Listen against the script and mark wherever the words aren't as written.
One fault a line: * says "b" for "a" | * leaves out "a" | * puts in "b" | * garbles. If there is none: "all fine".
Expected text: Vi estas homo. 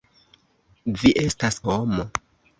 all fine